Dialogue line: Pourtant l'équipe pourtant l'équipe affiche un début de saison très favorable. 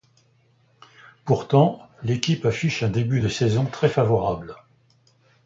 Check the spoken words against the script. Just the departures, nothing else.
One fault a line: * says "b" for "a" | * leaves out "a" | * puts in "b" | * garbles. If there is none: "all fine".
* leaves out "pourtant l'équipe"